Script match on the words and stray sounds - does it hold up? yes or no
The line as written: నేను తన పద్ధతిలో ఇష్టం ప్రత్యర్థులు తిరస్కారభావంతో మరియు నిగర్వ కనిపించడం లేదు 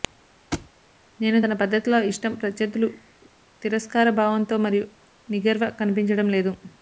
no